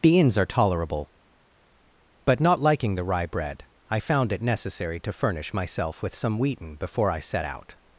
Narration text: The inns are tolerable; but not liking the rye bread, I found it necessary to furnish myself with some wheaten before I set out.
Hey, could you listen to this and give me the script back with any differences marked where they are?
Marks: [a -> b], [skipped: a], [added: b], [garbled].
The inns are tolerable; but not liking the rye bread, I found it necessary to furnish myself with some wheaten before I set out.